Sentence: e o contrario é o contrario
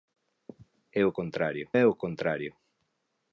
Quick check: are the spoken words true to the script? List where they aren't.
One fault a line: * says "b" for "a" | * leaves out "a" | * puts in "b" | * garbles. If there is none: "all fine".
all fine